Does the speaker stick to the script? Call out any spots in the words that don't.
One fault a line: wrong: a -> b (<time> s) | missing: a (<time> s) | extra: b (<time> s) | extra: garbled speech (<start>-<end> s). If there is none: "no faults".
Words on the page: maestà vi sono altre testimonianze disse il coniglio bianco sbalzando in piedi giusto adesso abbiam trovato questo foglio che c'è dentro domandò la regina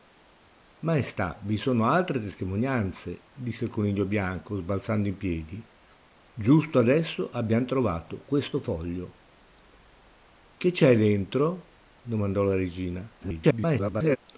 extra: garbled speech (13.2-14.2 s)